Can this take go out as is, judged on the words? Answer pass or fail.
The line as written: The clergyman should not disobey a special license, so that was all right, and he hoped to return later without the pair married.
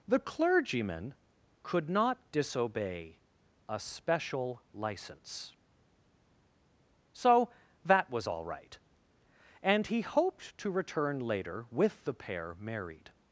fail